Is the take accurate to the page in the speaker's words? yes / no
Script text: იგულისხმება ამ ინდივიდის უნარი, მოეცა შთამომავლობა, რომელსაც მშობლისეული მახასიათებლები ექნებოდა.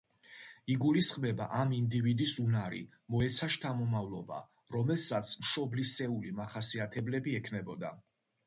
yes